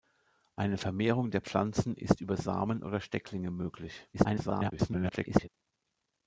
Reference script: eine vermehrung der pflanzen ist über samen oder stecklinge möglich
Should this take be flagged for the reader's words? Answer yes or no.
yes